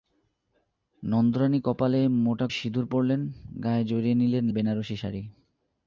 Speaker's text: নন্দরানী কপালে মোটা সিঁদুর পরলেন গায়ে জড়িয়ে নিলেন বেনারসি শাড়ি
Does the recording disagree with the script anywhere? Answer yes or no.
no